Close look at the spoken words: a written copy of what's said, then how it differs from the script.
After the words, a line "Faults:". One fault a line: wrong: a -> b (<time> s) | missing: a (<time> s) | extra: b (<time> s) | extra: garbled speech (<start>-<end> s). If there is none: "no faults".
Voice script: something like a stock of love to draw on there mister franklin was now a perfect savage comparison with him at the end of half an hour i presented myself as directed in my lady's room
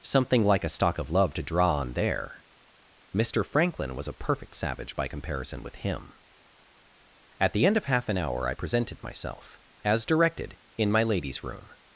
something like a stock of love to draw on there mister franklin was a perfect savage by comparison with him at the end of half an hour i presented myself as directed in my lady's room
Faults:
missing: now (4.1 s)
extra: by (5.0 s)